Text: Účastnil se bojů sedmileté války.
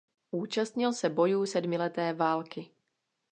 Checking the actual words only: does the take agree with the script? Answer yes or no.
yes